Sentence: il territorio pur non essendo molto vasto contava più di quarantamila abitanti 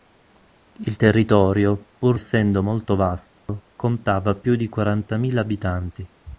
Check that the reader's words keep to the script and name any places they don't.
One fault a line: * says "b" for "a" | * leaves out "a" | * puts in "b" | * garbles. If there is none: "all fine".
* leaves out "non"